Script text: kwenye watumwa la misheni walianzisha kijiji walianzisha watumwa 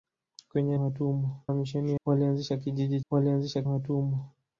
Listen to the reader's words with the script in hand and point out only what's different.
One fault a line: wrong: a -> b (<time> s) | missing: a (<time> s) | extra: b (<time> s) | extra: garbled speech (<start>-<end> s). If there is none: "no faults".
no faults